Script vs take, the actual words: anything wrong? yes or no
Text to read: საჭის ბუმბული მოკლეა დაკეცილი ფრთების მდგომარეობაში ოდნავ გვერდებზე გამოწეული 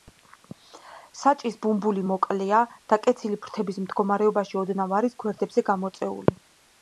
yes